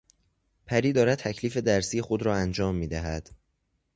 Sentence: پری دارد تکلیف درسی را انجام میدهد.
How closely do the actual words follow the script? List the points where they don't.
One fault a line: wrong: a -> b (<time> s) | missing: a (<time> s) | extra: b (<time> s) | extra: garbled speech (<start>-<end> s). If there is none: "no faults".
extra: خود (2.0 s)